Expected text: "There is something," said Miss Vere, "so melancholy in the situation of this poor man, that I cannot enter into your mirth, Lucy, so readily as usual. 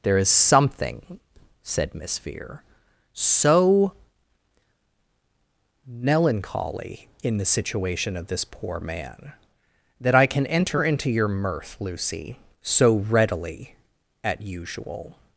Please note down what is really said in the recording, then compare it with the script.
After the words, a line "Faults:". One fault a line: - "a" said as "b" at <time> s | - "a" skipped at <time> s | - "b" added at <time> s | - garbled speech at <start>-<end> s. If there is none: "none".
"There is something," said Miss Vere, "so melancholy in the situation of this poor man, that I can enter into your mirth, Lucy, so readily at usual.
Faults:
- "cannot" said as "can" at 10.3 s
- "as" said as "at" at 14.2 s